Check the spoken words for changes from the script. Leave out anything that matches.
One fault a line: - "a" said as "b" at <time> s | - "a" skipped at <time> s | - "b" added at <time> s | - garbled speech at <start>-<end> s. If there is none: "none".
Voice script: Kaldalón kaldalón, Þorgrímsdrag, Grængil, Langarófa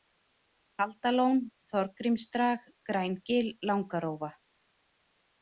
- "kaldalón" skipped at 1.4 s